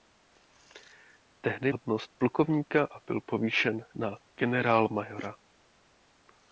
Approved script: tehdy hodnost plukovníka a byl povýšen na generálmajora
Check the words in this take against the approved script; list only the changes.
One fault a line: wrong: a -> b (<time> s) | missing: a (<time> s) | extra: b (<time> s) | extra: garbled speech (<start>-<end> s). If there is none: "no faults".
no faults